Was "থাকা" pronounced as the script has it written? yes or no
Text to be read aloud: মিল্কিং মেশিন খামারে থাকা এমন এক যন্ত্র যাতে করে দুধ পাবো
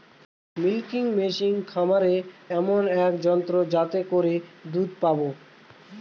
no